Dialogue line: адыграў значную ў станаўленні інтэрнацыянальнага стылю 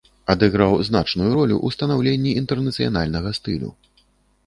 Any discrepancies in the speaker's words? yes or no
yes